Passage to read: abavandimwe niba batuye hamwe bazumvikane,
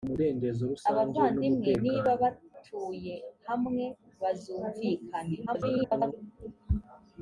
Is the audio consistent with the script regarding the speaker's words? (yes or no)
no